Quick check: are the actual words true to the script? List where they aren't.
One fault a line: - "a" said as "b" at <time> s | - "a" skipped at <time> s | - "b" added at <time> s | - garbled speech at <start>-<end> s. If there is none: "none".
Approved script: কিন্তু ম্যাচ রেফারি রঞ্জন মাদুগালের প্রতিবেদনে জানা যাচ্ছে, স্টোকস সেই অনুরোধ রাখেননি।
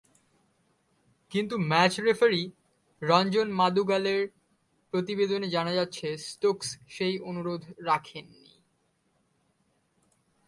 none